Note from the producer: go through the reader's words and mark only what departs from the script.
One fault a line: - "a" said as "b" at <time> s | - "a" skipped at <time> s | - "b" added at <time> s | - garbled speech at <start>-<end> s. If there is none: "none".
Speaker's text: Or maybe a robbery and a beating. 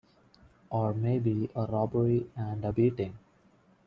none